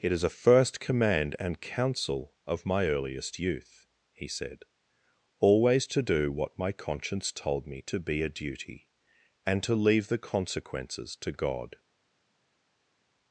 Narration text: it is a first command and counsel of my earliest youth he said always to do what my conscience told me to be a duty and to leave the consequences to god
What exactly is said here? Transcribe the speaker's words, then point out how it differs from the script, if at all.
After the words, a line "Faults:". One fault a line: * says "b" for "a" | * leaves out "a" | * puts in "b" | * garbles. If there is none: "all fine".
it is a first command and counsel of my earliest youth he said always to do what my conscience told me to be a duty and to leave the consequences to god
Faults:
all fine